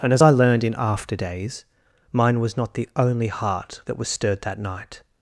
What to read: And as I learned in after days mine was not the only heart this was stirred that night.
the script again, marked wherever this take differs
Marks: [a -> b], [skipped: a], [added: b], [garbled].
And as I learned in after days mine was not the only heart [this -> that] was stirred that night.